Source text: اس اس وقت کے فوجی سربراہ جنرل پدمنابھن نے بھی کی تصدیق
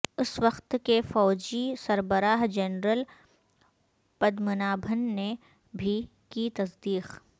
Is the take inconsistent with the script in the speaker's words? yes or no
yes